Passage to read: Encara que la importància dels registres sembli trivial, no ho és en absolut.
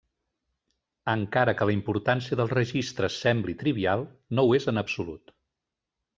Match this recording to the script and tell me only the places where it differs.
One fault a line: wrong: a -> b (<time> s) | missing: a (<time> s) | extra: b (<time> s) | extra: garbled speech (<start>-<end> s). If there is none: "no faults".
no faults